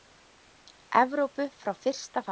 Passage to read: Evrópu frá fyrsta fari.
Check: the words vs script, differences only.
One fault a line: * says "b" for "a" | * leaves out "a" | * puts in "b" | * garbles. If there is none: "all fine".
all fine